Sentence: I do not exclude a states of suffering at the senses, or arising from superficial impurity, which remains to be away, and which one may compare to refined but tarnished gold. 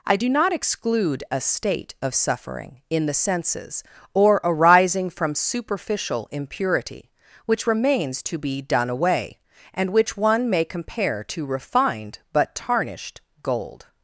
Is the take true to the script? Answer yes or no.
no